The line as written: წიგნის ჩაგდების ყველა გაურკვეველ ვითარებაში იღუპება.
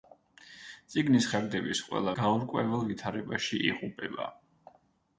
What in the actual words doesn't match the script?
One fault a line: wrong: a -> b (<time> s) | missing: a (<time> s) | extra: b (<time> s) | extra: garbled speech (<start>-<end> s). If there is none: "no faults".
no faults